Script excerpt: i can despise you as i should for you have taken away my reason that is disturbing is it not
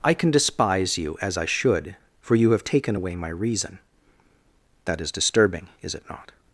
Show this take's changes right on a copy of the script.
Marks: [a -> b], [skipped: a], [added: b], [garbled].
i can despise you as i should for you have taken away my reason that is disturbing is it not